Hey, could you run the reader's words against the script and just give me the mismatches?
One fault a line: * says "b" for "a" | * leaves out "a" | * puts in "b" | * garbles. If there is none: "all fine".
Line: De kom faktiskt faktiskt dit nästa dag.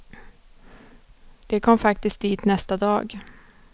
* leaves out "faktiskt"